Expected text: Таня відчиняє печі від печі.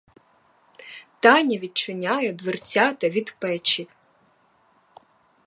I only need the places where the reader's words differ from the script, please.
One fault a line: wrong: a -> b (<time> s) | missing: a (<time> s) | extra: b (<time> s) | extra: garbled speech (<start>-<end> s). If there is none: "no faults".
wrong: печі -> дверцята (2.3 s)